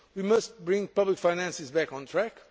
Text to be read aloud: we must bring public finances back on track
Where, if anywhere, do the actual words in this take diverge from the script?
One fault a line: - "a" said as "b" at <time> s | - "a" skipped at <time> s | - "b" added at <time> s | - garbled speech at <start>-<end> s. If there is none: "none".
none